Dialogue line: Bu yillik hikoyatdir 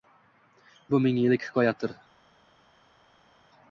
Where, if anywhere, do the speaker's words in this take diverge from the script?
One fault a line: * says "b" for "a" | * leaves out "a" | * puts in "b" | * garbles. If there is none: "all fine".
* puts in "ming"